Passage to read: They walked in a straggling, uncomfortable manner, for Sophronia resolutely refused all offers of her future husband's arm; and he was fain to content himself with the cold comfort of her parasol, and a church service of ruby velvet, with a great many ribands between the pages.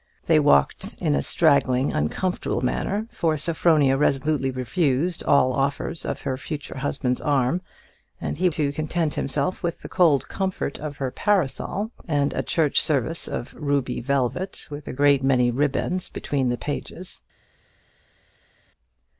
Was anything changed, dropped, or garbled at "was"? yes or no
yes